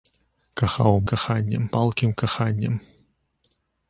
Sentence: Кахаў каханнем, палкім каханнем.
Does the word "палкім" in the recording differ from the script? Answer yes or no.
no